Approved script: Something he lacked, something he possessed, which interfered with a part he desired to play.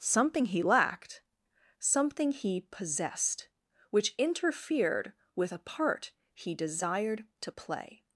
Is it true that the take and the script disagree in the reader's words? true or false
false